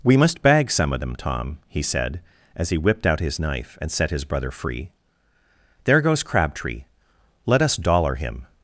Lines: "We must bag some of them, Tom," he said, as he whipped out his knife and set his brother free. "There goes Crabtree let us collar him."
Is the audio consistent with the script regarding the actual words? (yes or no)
no